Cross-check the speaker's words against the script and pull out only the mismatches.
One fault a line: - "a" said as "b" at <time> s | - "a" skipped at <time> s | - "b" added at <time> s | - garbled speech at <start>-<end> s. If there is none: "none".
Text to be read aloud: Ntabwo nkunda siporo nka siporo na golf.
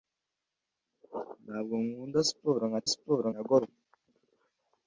none